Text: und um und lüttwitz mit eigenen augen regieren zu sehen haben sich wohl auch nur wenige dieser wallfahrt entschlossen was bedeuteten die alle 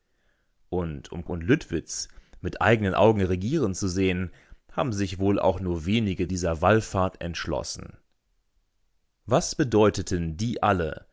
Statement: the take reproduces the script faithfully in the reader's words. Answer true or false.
true